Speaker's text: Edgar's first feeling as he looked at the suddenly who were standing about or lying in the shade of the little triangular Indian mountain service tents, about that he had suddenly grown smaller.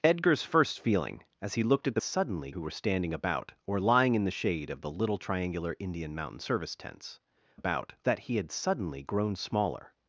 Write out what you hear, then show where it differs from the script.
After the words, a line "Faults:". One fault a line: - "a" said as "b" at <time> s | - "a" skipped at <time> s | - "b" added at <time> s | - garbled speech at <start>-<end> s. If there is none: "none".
Edgar's first feeling as he looked at the suddenly who were standing about or lying in the shade of the little triangular Indian mountain service tents, about that he had suddenly grown smaller.
Faults:
none